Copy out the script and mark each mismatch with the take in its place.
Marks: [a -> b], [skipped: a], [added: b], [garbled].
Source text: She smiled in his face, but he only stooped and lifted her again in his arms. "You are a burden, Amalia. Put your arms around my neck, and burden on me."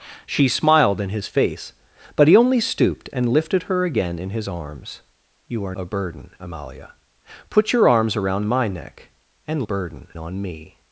She smiled in his face, but he only stooped and lifted her again in his arms. "You are a burden, Amalia. Put your arms around my neck, and burden on me."